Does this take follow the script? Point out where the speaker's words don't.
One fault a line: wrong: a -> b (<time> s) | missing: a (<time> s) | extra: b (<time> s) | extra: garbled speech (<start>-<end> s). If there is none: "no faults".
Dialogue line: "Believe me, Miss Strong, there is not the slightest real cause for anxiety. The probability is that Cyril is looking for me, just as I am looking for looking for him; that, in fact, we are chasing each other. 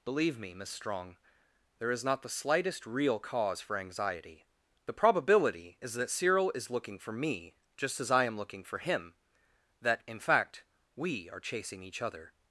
missing: looking for (8.8 s)